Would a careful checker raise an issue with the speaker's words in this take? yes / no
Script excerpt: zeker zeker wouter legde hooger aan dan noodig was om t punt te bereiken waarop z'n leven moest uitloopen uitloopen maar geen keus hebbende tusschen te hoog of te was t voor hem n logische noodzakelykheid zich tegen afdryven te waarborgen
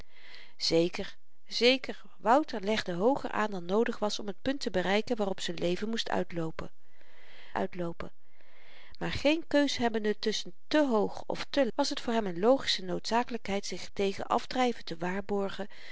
no